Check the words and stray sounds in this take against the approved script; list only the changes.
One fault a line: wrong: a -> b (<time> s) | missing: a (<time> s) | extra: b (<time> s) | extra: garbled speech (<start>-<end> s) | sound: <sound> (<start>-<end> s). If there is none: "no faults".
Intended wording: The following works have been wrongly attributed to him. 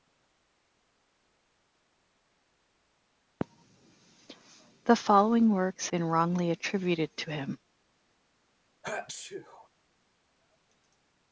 missing: have (5.9 s)
sound: sneeze (8.8-9.7 s)